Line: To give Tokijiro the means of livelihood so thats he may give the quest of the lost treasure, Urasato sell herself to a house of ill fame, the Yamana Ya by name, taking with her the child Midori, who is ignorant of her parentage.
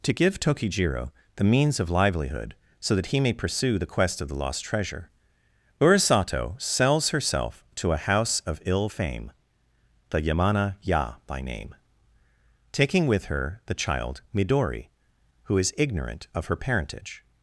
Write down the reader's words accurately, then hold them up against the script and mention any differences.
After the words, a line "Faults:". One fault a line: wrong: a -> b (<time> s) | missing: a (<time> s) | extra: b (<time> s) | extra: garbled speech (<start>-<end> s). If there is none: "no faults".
To give Tokijiro the means of livelihood so that he may pursue the quest of the lost treasure, Urasato sells herself to a house of ill fame, the Yamana Ya by name, taking with her the child Midori, who is ignorant of her parentage.
Faults:
wrong: thats -> that (3.0 s)
wrong: give -> pursue (3.3 s)
wrong: sell -> sells (6.6 s)